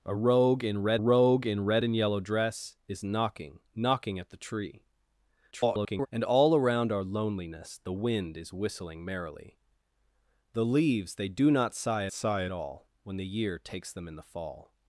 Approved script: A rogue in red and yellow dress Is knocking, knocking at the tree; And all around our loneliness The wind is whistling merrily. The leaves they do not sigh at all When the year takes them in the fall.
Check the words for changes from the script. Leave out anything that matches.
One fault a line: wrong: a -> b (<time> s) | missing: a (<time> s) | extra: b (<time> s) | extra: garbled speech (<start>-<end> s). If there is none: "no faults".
extra: rogue in red (1.0 s)
extra: garbled speech (5.5-6.1 s)
extra: sigh (12.1 s)